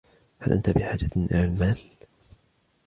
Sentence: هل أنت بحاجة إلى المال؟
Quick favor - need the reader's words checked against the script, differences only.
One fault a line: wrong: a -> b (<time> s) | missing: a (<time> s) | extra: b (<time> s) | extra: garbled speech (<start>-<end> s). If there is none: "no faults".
no faults